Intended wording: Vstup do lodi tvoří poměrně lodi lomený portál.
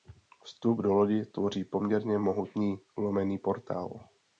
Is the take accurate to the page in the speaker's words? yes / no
no